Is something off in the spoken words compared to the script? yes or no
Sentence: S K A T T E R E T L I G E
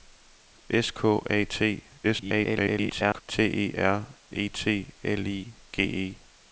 yes